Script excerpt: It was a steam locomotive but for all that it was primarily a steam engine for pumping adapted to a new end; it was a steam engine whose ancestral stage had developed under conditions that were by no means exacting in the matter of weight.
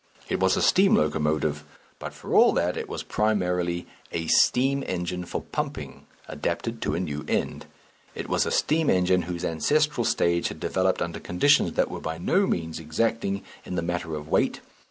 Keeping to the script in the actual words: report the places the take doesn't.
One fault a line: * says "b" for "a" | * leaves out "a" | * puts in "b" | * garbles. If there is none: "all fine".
all fine